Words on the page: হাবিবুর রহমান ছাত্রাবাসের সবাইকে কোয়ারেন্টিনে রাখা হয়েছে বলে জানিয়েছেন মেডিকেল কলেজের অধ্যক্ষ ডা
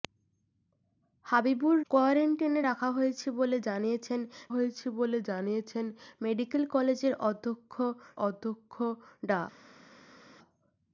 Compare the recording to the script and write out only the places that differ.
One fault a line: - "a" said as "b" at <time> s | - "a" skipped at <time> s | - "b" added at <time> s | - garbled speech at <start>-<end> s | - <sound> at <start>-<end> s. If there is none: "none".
- "রহমান ছাত্রাবাসের সবাইকে কোয়ারেন্টিনে রাখা" said as "কোয়ারেন্টিনে রাখা হয়েছে বলে জানিয়েছেন" at 1.9 s
- "অধ্যক্ষ" added at 8.2 s